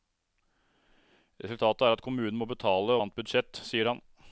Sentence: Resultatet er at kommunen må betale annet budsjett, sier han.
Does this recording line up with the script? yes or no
yes